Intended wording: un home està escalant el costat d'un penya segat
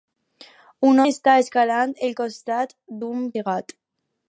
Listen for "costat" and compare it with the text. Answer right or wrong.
right